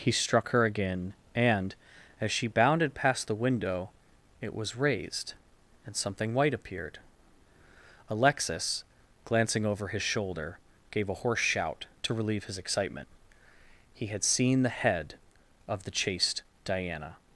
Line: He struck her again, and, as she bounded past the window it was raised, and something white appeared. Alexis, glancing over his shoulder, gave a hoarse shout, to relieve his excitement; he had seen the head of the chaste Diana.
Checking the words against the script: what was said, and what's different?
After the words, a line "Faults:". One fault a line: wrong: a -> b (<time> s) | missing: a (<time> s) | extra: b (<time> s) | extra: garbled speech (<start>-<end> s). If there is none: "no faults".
He struck her again, and, as she bounded past the window it was raised, and something white appeared. Alexis, glancing over his shoulder, gave a hoarse shout, to relieve his excitement; he had seen the head of the chaste Diana.
Faults:
no faults